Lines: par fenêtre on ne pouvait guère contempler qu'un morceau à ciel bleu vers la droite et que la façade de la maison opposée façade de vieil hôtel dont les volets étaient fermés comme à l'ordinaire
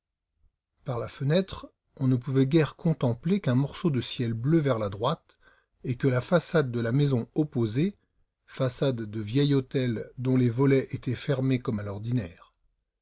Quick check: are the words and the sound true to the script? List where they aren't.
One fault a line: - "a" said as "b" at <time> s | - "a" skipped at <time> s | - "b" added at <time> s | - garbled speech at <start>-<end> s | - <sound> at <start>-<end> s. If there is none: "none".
- "la" added at 1.0 s
- "à" said as "de" at 3.9 s